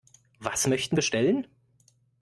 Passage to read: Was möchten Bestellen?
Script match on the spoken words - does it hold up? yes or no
yes